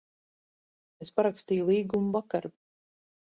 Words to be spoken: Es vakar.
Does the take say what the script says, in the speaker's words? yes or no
no